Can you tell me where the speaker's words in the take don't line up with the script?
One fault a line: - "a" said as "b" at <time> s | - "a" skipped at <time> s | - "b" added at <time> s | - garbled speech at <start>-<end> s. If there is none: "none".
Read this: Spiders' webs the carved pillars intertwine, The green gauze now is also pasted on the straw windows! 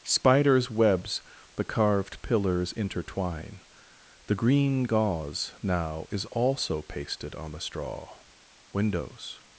none